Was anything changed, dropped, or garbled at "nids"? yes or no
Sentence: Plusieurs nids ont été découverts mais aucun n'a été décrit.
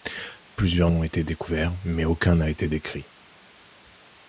yes